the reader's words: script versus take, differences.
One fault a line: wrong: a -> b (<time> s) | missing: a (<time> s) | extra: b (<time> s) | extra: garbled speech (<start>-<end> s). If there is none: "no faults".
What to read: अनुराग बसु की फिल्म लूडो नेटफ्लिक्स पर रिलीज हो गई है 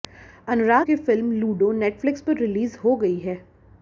missing: बसु (0.9 s)